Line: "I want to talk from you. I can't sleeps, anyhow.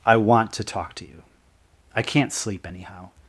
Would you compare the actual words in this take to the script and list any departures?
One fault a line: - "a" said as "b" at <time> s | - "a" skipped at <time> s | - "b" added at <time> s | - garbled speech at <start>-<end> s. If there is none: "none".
- "from" said as "to" at 0.9 s
- "sleeps" said as "sleep" at 2.3 s